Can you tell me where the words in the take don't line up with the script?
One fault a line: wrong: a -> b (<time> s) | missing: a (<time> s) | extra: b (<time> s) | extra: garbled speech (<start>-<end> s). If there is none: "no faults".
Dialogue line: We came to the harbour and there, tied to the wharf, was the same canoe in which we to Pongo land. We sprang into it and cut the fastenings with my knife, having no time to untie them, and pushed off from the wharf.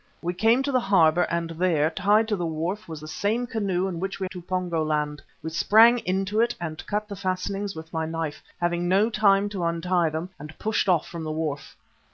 no faults